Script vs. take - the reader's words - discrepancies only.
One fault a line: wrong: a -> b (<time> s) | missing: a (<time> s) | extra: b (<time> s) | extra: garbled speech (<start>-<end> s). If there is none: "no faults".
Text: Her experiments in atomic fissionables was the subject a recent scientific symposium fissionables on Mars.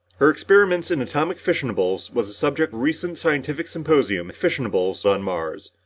no faults